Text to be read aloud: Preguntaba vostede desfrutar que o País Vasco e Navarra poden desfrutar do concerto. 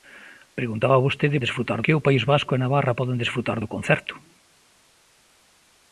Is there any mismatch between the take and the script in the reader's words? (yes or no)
no